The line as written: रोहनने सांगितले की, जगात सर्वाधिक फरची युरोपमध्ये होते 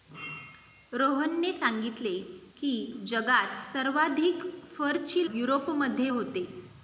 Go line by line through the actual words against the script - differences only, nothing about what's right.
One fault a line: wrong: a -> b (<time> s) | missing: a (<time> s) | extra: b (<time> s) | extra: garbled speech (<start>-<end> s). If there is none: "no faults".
no faults